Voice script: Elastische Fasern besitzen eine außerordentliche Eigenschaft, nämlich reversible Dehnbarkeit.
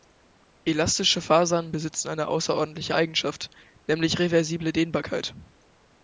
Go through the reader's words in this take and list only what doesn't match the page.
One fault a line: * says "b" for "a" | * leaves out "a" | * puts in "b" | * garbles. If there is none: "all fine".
all fine